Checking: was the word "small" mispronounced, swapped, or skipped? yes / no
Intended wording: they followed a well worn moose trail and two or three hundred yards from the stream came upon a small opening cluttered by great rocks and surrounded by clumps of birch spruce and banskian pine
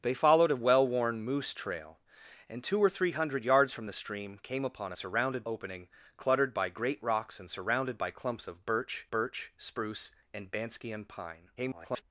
yes